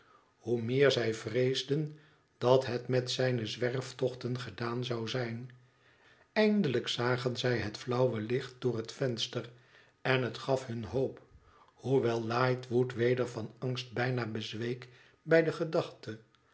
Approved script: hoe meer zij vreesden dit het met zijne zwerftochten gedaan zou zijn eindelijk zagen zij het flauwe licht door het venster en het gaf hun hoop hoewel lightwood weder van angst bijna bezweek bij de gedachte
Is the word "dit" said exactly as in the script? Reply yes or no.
no